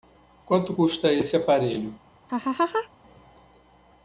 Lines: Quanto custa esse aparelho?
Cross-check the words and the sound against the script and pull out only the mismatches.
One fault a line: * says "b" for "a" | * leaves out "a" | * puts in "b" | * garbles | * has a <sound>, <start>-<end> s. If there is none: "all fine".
* has a laugh, 2.3-2.9 s